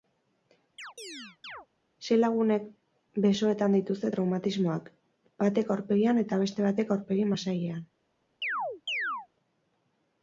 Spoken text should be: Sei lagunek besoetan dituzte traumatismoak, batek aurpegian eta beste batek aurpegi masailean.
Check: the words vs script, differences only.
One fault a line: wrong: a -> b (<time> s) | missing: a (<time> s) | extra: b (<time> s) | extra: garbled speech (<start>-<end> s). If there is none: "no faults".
no faults